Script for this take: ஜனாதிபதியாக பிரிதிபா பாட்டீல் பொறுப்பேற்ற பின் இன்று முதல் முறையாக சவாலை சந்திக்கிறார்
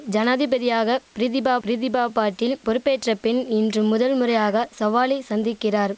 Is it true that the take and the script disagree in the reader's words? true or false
true